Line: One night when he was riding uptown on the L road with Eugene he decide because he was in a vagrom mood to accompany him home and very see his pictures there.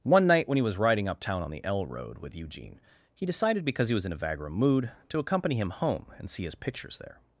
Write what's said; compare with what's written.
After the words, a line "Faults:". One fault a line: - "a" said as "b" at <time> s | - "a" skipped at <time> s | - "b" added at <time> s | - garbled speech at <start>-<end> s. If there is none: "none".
One night when he was riding uptown on the L road with Eugene he decided because he was in a vagrom mood to accompany him home and see his pictures there.
Faults:
- "decide" said as "decided" at 3.3 s
- "very" skipped at 6.3 s